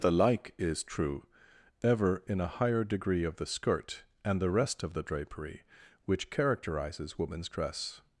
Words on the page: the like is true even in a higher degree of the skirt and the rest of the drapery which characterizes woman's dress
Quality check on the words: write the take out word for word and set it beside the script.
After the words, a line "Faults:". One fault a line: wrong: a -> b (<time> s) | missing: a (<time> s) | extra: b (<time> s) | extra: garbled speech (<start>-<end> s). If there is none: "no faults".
the like is true ever in a higher degree of the skirt and the rest of the drapery which characterizes woman's dress
Faults:
wrong: even -> ever (1.8 s)